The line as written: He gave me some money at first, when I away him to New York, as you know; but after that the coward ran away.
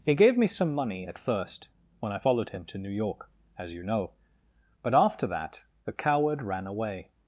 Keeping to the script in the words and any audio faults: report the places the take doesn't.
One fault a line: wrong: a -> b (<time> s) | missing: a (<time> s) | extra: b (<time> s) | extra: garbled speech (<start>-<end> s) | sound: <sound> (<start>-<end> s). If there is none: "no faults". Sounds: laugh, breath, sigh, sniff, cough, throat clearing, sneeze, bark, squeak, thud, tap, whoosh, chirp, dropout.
wrong: away -> followed (2.1 s)